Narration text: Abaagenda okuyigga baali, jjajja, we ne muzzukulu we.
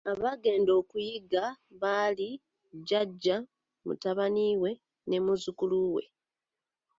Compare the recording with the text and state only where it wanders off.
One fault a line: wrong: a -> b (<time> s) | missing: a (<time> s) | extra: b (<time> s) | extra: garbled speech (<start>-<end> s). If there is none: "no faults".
extra: mutabani (3.9 s)